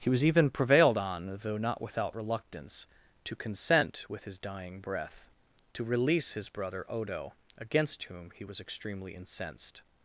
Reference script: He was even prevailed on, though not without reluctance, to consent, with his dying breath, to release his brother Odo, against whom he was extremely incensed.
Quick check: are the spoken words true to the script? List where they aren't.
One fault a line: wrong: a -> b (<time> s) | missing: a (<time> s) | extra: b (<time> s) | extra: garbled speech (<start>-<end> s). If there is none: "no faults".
no faults